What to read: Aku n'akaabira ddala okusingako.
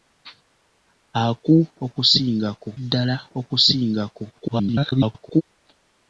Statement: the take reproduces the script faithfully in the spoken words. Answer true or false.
false